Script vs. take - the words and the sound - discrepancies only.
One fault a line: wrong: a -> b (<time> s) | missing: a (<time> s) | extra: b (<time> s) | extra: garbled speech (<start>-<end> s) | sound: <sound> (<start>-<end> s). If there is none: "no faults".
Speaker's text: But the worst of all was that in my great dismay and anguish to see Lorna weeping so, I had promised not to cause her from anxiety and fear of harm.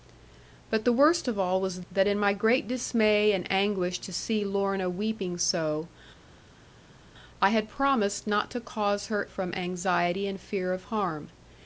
no faults